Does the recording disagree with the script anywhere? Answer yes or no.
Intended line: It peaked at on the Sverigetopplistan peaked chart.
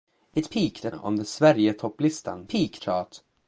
no